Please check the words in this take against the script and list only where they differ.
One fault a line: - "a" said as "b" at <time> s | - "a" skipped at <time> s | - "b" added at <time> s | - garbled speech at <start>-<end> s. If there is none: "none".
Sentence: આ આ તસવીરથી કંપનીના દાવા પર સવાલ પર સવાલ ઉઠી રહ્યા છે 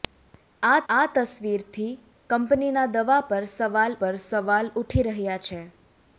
none